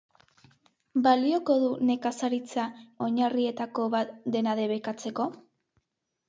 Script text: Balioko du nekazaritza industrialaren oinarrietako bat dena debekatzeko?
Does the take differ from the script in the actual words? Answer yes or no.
yes